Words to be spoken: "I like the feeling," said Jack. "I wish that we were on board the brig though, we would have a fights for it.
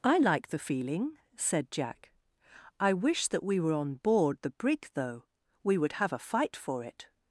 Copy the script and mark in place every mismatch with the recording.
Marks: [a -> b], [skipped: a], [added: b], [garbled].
"I like the feeling," said Jack. "I wish that we were on board the brig though, we would have a [fights -> fight] for it.